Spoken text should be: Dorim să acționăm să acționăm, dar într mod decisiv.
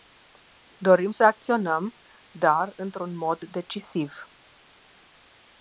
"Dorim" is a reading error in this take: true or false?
false